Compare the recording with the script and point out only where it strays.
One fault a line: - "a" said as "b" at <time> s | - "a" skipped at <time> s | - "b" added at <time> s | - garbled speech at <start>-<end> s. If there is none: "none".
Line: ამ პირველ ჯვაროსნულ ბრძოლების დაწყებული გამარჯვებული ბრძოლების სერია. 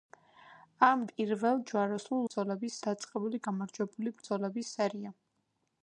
none